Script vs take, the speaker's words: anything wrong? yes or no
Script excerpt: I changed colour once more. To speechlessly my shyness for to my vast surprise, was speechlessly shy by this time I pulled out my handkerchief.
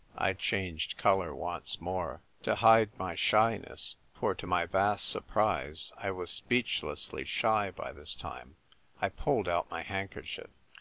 yes